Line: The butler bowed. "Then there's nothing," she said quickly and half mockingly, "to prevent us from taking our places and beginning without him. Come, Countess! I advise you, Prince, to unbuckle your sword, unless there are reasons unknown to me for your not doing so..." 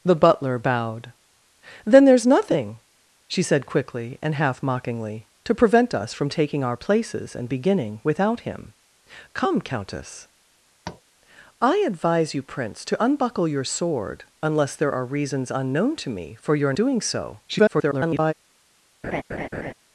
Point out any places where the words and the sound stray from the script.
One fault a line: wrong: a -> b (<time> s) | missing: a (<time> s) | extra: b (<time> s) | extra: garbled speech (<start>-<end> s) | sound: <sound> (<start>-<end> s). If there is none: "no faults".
sound: tap (10.8-11.0 s)
missing: not (16.7 s)
extra: garbled speech (17.5-18.3 s)
sound: laugh (19.0-19.7 s)